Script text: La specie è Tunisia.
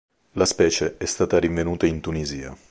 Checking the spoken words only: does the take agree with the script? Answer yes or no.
no